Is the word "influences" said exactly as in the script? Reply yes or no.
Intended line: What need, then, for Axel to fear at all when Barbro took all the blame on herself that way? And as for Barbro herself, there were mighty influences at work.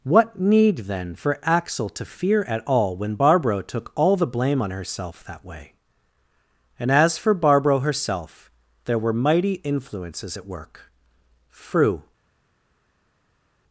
yes